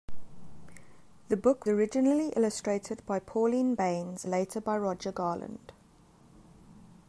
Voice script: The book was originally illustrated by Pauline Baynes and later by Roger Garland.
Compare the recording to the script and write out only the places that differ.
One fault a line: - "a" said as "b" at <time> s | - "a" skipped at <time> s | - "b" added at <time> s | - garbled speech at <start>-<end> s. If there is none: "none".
- "was" skipped at 1.7 s
- "and" skipped at 4.2 s